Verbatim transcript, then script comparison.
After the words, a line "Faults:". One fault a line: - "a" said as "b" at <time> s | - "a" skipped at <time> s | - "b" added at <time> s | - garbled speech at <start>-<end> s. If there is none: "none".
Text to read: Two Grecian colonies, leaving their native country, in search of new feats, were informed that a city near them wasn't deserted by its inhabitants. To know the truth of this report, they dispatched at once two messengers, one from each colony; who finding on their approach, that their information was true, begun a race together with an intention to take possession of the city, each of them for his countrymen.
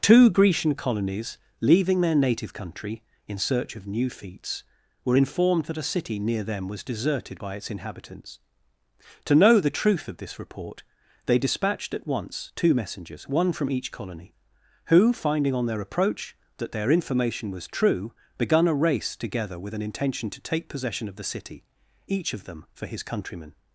Two Grecian colonies, leaving their native country, in search of new feats, were informed that a city near them was deserted by its inhabitants. To know the truth of this report, they dispatched at once two messengers, one from each colony; who finding on their approach, that their information was true, begun a race together with an intention to take possession of the city, each of them for his countrymen.
Faults:
- "wasn't" said as "was" at 6.7 s